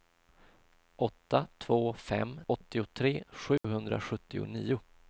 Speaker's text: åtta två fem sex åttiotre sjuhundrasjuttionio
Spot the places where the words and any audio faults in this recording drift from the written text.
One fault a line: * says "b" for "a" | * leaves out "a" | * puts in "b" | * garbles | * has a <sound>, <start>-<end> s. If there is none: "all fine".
* leaves out "sex"
* has a dropout, 3.6-3.6 s